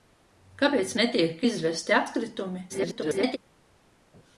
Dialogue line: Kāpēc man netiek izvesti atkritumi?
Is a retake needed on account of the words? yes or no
yes